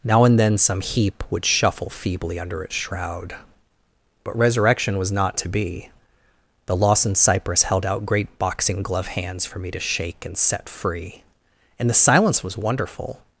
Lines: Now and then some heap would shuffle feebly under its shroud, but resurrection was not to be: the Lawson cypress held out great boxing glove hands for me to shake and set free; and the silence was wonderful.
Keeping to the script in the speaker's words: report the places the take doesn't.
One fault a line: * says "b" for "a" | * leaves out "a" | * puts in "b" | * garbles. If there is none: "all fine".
all fine